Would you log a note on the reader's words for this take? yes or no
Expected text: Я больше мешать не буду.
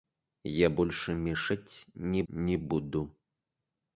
yes